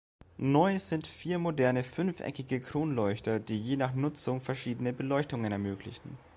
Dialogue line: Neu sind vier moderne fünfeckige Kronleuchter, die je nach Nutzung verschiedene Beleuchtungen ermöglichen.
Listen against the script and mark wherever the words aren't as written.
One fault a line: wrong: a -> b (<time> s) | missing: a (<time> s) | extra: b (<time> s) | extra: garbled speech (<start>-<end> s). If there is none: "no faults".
no faults